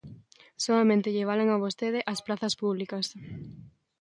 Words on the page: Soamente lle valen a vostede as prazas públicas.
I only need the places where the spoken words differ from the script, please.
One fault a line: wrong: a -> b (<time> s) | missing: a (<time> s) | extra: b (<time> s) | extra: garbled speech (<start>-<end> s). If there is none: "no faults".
no faults